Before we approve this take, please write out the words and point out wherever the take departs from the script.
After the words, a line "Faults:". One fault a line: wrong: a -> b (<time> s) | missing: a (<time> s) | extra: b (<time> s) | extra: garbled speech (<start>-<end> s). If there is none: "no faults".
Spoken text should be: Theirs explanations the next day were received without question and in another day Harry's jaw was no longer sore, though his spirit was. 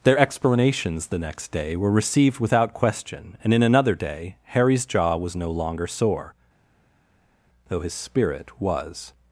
Their explanations the next day were received without question and in another day Harry's jaw was no longer sore, though his spirit was.
Faults:
wrong: Theirs -> Their (0.0 s)